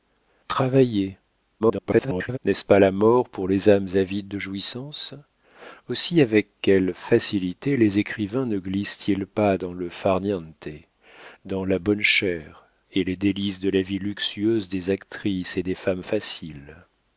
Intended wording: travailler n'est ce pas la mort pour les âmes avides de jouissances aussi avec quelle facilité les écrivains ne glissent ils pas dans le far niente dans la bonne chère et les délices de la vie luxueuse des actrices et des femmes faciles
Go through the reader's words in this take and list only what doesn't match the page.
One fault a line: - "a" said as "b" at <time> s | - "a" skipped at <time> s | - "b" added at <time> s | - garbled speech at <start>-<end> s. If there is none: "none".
- garbled speech at 1.6-2.4 s